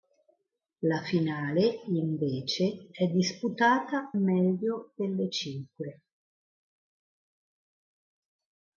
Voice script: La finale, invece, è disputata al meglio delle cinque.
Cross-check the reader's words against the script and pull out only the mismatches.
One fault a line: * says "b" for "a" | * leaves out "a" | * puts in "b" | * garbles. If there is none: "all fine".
* leaves out "al"